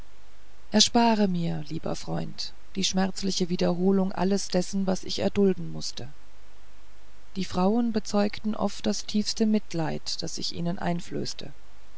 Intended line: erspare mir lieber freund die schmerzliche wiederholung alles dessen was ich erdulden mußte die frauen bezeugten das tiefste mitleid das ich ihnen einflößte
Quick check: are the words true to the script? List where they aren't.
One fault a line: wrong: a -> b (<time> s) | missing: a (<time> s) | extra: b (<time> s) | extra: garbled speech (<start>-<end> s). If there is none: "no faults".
extra: oft (8.6 s)